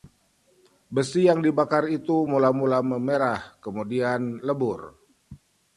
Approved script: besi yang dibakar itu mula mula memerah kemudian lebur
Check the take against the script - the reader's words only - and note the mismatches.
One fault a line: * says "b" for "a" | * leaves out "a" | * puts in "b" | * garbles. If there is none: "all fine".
all fine